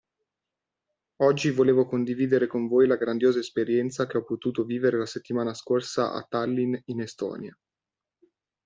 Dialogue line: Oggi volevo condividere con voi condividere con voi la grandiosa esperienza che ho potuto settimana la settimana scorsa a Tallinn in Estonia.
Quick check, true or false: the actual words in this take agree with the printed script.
false